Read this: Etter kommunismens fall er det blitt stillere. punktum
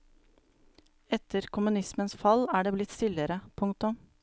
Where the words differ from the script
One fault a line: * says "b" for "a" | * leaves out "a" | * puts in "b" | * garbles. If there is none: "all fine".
all fine